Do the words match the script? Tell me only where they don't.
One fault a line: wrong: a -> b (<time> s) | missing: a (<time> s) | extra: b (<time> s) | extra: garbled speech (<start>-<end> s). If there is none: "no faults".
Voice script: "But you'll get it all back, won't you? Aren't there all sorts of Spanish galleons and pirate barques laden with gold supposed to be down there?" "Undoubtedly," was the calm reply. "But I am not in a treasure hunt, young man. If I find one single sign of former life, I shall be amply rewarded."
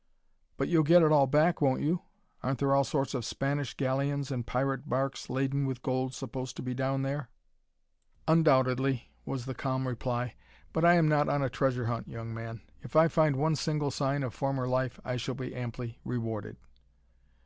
wrong: in -> on (11.3 s)